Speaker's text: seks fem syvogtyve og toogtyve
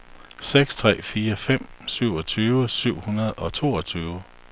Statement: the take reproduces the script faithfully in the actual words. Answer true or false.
false